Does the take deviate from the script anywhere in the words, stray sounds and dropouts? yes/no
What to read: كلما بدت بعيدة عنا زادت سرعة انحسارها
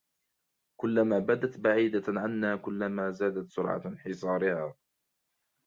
yes